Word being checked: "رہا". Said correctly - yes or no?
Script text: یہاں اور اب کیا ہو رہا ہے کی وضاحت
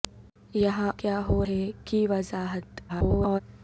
no